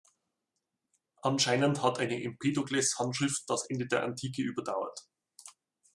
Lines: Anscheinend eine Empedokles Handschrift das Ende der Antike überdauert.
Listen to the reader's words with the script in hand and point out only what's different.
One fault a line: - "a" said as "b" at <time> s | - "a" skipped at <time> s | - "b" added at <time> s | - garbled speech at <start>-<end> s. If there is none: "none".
- "hat" added at 1.8 s